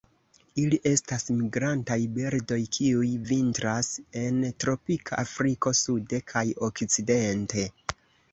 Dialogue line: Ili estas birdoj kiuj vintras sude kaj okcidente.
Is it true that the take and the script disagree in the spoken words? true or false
true